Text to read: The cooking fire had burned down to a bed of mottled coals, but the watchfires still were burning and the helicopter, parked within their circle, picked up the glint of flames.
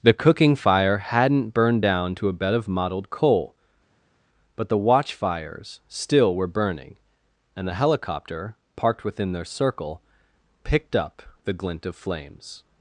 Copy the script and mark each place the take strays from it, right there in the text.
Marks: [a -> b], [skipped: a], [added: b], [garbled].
The cooking fire [had -> hadn't] burned down to a bed of mottled [coals, -> coal] but the watchfires still were burning and the helicopter, parked within their circle, picked up the glint of flames.